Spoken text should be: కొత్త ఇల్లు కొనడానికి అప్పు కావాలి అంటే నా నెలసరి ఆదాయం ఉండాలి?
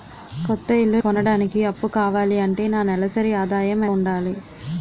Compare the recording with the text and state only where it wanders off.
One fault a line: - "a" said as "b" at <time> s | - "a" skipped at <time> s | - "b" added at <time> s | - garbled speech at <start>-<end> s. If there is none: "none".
none